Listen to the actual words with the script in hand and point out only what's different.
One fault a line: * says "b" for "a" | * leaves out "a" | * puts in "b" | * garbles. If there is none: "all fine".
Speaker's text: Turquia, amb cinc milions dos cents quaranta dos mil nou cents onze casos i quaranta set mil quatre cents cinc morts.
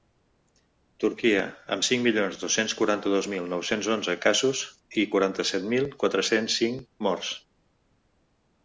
all fine